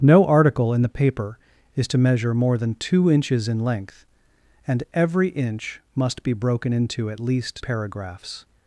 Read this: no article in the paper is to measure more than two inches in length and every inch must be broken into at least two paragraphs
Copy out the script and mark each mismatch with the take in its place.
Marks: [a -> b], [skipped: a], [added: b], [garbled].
no article in the paper is to measure more than two inches in length and every inch must be broken into at least [skipped: two] paragraphs